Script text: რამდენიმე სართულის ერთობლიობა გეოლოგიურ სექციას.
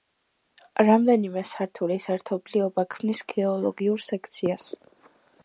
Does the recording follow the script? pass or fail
fail